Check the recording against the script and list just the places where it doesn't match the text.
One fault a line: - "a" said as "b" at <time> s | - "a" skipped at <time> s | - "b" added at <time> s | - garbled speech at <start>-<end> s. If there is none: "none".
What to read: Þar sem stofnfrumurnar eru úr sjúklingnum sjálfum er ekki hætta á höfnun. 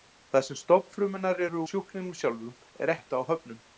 - "úr" skipped at 1.6 s
- "ekki" skipped at 2.9 s